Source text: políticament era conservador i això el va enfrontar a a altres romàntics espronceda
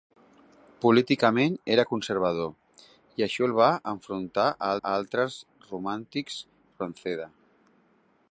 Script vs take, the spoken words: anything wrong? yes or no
no